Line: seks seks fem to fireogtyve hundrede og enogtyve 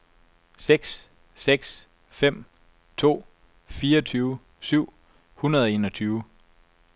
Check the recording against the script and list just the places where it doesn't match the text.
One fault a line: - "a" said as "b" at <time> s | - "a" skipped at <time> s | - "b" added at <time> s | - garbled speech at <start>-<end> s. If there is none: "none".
- "syv" added at 4.6 s